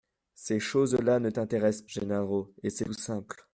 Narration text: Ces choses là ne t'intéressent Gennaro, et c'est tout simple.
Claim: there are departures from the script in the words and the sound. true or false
false